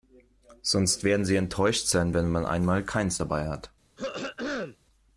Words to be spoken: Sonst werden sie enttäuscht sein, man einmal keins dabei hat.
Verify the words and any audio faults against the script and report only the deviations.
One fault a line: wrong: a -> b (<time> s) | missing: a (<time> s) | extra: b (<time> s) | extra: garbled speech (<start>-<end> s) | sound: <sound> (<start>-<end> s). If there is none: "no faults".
extra: wenn (2.1 s)
sound: throat clearing (4.0-4.8 s)